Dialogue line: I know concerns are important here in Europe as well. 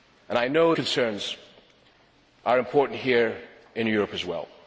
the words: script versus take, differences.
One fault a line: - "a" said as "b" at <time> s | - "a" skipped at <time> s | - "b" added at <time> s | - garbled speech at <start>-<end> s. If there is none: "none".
none